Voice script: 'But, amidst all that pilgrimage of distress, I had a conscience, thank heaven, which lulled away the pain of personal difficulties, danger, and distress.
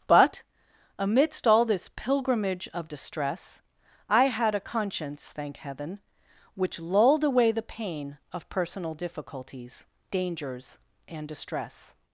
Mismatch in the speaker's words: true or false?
true